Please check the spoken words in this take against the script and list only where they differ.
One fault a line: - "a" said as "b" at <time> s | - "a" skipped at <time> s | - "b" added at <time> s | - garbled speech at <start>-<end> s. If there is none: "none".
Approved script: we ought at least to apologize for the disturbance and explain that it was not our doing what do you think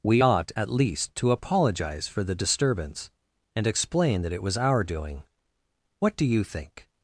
- "not" skipped at 4.6 s